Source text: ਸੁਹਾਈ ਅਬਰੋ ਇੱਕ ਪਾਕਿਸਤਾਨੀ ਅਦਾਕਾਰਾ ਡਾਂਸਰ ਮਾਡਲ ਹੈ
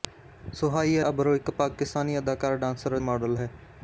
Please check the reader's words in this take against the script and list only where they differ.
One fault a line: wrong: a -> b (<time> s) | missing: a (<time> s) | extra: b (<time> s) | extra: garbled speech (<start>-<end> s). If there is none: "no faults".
no faults